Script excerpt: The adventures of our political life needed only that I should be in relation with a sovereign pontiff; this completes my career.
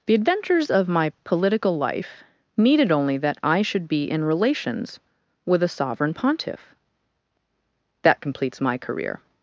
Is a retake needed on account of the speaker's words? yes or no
yes